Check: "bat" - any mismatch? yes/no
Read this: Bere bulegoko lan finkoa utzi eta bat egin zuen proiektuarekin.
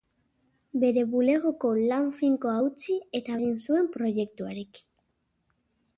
yes